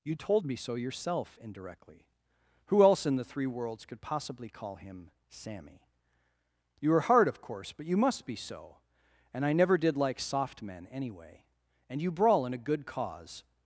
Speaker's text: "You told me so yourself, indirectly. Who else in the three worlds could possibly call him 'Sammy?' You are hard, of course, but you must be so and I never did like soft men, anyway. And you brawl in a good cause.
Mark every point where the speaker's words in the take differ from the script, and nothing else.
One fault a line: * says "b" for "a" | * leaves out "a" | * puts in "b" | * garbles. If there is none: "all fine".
all fine